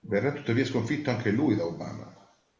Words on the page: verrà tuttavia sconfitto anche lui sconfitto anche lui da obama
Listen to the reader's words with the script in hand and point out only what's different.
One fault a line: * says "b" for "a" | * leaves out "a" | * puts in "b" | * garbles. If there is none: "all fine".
* leaves out "sconfitto anche lui"